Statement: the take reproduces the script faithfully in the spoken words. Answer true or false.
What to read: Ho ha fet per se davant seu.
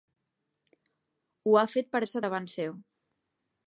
true